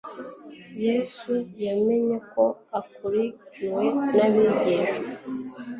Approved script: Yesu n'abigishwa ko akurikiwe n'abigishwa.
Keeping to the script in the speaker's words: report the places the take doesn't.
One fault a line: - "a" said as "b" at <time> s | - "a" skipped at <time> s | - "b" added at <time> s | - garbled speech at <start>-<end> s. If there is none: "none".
- "n'abigishwa" said as "yamenye" at 1.6 s